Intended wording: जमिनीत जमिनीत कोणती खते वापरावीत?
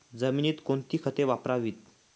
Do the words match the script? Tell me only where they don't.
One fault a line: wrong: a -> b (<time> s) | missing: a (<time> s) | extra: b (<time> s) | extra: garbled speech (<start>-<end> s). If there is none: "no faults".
missing: जमिनीत (0.5 s)